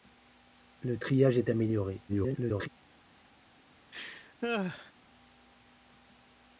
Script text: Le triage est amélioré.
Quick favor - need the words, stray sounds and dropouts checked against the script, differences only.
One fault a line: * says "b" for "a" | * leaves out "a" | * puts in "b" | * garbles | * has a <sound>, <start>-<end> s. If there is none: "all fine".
* garbles
* has a laugh, 3.9-4.9 s